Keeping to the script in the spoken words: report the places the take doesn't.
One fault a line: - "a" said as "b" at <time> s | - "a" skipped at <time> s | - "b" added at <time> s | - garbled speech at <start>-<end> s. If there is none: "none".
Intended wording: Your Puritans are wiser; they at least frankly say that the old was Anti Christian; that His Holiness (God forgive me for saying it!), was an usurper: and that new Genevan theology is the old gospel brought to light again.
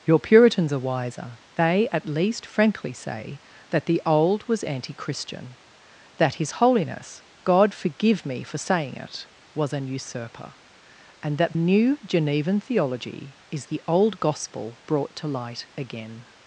none